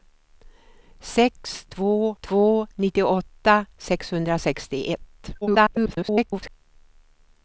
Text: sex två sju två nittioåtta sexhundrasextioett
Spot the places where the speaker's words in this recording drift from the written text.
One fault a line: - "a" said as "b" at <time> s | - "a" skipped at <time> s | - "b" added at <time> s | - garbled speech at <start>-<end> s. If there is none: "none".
- "sju" skipped at 2.1 s
- garbled speech at 5.4-6.5 s